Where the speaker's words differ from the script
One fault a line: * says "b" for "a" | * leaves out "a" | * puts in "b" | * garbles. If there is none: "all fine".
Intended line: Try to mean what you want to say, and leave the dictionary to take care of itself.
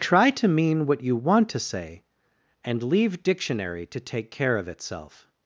* leaves out "the"